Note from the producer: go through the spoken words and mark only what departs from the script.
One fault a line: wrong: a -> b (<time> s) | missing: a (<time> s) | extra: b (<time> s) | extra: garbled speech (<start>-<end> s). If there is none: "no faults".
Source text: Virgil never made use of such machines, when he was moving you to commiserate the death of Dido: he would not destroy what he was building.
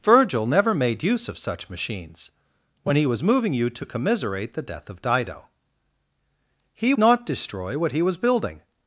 missing: would (7.0 s)